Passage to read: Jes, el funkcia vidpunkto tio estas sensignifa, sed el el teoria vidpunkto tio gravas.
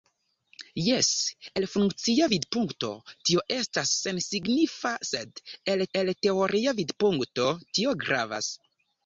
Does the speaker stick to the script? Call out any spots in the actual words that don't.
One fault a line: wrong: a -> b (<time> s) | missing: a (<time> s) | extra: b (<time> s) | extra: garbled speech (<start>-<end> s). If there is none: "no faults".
no faults